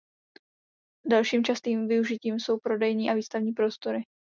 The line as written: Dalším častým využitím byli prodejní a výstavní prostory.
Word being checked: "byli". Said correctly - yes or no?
no